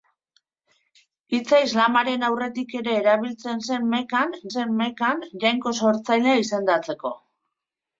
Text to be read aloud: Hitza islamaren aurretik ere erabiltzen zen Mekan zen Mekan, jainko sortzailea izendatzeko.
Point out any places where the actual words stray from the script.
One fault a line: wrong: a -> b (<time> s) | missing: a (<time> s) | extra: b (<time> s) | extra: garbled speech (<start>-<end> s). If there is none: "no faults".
no faults